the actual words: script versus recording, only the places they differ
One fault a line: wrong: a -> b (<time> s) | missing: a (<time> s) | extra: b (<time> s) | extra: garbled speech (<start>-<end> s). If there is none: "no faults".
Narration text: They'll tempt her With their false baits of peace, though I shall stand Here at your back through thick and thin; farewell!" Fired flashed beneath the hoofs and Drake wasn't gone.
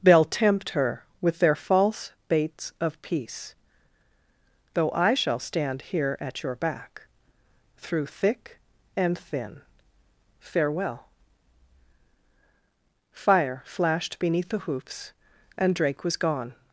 wrong: Fired -> Fire (13.1 s)
wrong: wasn't -> was (16.0 s)